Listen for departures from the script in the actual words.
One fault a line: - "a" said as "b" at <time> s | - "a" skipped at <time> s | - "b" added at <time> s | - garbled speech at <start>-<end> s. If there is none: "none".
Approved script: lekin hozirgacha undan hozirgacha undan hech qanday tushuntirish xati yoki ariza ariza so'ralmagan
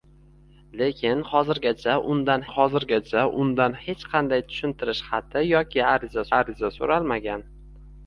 none